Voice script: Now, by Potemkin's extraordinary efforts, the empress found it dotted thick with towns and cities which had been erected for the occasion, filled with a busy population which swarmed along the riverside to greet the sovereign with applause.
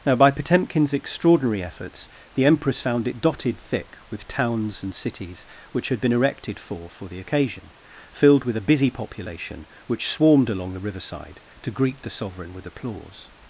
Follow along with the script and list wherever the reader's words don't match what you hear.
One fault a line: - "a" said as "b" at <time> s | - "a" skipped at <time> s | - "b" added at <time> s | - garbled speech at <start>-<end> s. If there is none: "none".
- "for" added at 6.9 s